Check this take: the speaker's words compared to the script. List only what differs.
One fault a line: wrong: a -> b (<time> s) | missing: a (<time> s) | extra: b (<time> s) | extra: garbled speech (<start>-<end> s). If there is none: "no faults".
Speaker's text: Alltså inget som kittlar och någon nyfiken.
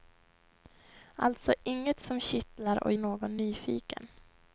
no faults